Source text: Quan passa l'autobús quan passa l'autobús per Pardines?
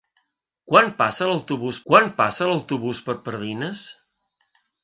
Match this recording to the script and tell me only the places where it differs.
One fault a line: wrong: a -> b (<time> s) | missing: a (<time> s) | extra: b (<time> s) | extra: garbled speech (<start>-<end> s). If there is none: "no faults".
no faults